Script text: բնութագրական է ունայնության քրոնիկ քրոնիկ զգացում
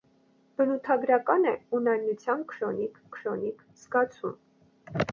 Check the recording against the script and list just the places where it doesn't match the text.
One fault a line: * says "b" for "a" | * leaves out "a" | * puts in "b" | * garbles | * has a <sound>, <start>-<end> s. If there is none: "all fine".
all fine